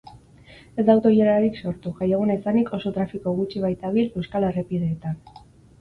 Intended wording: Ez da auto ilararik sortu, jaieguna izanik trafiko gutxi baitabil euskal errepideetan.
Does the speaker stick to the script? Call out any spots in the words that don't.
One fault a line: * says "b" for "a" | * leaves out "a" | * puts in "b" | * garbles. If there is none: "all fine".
* puts in "oso"